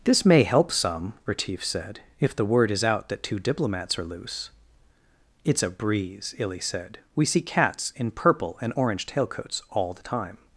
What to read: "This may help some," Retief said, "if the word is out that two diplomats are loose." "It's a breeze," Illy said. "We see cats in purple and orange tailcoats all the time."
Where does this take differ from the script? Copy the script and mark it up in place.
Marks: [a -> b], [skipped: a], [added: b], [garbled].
"This may help some," Retief said, "if the word is out that two diplomats are loose." "It's a breeze," Illy said. "We see cats in purple and orange tailcoats all the time."